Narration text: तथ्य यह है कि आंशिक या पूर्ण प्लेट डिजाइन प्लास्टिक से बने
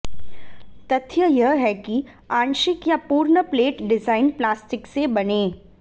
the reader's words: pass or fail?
pass